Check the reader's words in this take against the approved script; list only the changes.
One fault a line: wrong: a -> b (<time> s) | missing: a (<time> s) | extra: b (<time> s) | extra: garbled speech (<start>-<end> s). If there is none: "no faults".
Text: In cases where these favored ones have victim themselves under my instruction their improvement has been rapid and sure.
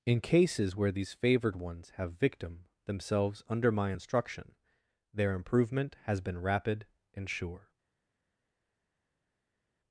no faults